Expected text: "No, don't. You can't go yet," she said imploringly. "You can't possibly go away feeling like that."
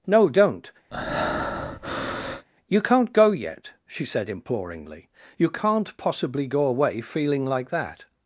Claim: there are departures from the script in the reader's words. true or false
false